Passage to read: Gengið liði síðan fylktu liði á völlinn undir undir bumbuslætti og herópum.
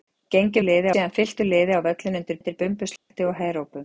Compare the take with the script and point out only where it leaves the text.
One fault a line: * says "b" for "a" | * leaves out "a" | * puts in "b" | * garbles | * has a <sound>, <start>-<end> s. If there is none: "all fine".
* has a dropout, 3.0-3.1 s